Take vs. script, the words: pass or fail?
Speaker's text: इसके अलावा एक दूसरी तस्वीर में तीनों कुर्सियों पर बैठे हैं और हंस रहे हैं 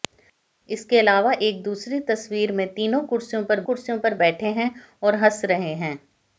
fail